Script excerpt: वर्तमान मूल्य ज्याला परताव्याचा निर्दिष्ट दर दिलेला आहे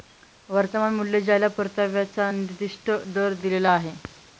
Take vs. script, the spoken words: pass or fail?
pass